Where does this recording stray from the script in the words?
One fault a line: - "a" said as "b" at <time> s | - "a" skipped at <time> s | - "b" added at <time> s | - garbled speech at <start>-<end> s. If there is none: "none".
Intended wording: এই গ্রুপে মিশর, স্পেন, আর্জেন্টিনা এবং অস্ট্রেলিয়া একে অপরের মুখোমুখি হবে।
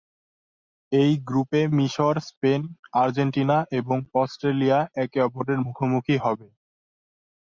none